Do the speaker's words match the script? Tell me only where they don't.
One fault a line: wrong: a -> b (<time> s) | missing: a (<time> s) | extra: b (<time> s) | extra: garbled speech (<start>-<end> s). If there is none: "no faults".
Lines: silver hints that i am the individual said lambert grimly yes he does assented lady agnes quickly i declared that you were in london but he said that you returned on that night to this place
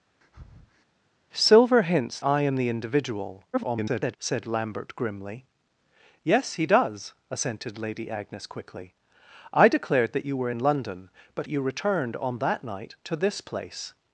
missing: that (2.2 s)
extra: garbled speech (3.5-4.2 s)
missing: he said that (11.5 s)